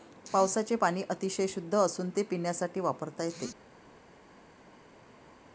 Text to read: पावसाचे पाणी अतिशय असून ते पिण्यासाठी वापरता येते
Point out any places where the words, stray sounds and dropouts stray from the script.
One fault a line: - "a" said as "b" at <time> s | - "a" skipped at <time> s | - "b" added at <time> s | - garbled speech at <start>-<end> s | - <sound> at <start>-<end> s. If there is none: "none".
- "शुद्ध" added at 1.5 s